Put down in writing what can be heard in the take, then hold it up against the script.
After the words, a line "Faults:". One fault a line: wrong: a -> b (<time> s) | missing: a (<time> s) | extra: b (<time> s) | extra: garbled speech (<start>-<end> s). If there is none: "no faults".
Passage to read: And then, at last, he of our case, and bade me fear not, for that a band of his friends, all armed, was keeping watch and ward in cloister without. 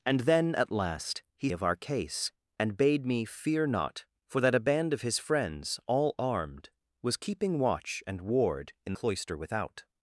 And then, at last, he of our case, and bade me fear not, for that a band of his friends, all armed, was keeping watch and ward in cloister without.
Faults:
no faults